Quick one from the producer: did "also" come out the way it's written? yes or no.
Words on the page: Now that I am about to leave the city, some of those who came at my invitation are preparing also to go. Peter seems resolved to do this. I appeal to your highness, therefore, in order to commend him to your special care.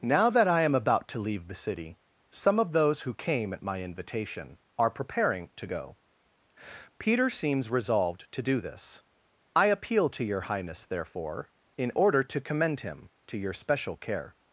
no